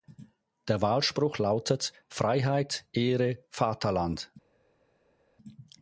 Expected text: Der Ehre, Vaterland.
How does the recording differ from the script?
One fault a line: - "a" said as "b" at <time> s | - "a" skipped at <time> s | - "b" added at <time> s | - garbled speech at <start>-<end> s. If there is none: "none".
- "Wahlspruch lautet Freiheit" added at 0.8 s